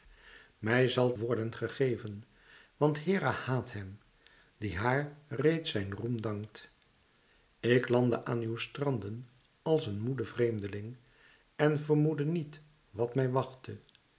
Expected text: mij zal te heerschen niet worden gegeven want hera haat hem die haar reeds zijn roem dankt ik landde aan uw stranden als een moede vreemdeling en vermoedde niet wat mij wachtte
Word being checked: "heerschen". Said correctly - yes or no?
no